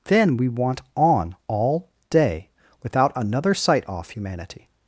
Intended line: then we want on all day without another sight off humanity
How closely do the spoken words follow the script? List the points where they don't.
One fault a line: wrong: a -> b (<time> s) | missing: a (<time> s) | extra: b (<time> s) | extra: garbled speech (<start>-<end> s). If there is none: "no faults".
no faults